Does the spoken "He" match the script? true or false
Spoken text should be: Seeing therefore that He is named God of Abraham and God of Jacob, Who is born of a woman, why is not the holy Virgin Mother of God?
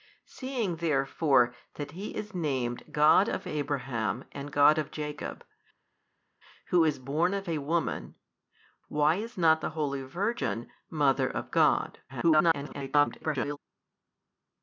true